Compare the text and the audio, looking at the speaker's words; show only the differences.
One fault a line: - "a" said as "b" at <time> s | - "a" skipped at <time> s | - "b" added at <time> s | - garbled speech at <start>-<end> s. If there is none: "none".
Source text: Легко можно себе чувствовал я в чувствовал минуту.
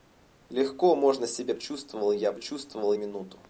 none